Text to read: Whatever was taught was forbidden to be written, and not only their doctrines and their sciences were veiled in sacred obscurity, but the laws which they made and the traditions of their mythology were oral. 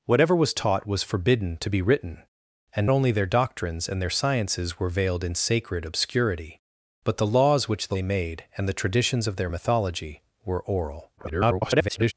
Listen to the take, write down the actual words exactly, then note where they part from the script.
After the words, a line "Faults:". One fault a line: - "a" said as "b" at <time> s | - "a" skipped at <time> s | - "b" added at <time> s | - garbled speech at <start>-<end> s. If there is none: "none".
Whatever was taught was forbidden to be written, and only their doctrines and their sciences were veiled in sacred obscurity, but the laws which they made and the traditions of their mythology were oral. [garbled]
Faults:
- "not" skipped at 2.9 s
- garbled speech at 11.2-12.1 s